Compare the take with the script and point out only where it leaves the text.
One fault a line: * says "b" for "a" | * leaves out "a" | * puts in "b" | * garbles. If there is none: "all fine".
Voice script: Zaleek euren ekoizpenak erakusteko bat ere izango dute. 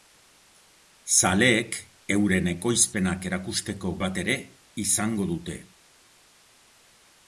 all fine